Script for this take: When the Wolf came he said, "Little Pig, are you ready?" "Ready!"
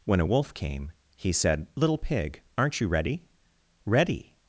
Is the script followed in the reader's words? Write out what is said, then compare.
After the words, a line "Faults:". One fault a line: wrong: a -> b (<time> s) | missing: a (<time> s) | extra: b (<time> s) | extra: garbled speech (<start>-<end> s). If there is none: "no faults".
When a Wolf came he said, "Little Pig, aren't you ready?" "Ready!"
Faults:
wrong: the -> a (0.2 s)
wrong: are -> aren't (2.6 s)